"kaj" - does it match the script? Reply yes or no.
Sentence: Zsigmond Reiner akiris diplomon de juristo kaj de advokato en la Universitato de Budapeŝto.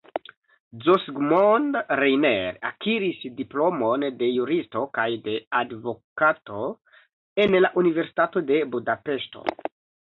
yes